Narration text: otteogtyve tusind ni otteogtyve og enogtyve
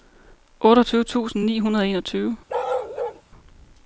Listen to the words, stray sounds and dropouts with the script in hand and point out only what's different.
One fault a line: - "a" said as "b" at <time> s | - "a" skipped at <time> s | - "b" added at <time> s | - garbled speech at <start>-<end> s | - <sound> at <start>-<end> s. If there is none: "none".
- "otteogtyve" said as "hundrede" at 1.6 s
- bark at 2.5-3.2 s